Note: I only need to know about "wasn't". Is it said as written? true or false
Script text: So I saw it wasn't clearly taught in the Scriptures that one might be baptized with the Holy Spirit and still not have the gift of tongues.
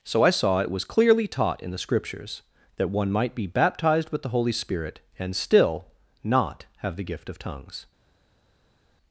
false